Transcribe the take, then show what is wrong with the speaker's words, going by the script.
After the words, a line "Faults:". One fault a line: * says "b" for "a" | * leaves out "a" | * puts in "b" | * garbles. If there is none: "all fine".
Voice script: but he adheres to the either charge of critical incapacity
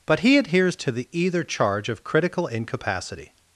but he adheres to the either charge of critical incapacity
Faults:
all fine